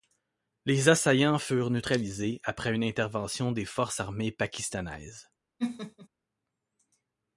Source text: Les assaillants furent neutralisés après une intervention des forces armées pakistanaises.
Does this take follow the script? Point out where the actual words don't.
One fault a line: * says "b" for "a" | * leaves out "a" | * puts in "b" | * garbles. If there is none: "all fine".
all fine